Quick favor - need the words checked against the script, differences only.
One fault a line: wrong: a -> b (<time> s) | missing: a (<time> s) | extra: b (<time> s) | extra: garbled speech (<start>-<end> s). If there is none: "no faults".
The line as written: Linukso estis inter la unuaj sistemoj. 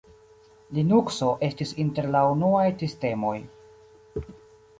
no faults